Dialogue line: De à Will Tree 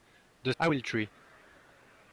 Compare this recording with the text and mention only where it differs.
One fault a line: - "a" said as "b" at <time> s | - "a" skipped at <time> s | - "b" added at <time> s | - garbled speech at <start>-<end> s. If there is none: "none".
none